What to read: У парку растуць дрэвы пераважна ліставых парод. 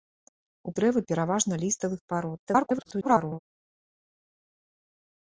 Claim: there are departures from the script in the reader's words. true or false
true